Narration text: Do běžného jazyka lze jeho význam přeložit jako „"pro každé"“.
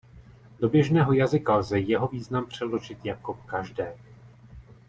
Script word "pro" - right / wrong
wrong